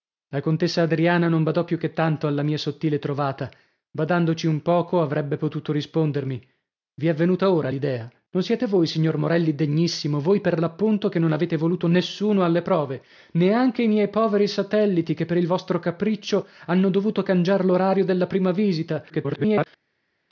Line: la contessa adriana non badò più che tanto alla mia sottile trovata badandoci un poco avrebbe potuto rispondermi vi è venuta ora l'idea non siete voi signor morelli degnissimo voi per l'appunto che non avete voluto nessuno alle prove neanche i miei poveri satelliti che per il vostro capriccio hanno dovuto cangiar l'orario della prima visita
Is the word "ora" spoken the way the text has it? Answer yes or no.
yes